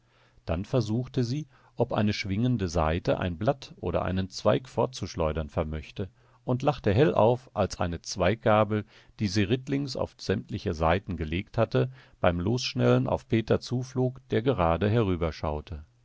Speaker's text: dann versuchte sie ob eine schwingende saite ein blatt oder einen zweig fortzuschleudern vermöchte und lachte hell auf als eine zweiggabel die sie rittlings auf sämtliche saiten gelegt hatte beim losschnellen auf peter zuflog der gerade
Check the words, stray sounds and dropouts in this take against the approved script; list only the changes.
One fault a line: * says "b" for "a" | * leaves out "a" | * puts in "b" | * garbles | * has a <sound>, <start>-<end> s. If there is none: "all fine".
all fine